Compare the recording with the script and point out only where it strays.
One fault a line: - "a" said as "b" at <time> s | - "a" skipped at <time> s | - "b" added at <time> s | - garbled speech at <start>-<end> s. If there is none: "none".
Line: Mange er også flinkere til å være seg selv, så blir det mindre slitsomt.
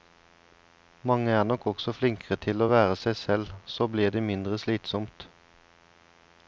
- "nok" added at 1.4 s